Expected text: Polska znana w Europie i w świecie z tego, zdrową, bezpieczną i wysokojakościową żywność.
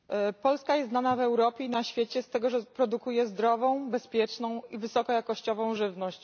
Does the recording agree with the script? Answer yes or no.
no